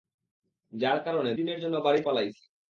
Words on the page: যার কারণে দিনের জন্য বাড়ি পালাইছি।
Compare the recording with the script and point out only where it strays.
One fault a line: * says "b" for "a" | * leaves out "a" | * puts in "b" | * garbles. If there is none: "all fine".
all fine